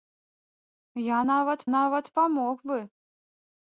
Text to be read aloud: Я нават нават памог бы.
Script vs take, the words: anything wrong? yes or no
no